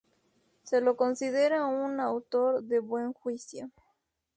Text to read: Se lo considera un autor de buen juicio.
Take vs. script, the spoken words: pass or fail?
pass